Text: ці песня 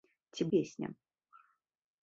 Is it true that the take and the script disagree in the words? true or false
false